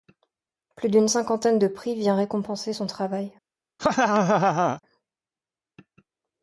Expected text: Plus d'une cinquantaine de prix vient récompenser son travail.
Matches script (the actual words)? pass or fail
pass